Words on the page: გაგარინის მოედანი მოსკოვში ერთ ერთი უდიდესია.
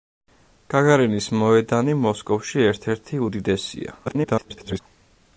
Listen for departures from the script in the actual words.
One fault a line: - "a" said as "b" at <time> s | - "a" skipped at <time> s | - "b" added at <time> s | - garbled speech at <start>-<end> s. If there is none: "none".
- garbled speech at 4.1-4.8 s